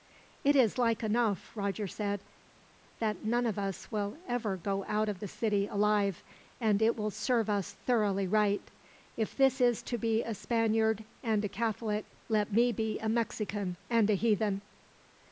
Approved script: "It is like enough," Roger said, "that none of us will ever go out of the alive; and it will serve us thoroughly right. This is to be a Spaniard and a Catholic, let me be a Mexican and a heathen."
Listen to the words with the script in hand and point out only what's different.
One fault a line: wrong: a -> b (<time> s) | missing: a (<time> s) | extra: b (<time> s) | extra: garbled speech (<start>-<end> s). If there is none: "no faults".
extra: city (5.3 s)
extra: If (9.2 s)